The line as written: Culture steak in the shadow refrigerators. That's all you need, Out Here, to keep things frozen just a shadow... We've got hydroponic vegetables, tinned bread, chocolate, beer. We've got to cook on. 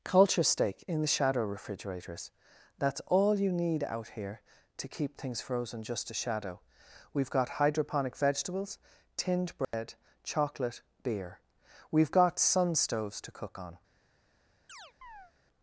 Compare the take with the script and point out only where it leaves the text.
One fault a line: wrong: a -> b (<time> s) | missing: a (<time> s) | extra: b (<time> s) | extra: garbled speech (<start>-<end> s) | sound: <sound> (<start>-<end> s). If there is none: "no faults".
sound: dropout (9.6-9.7 s)
extra: sun stoves (12.4 s)
sound: chirp (14.7-15.3 s)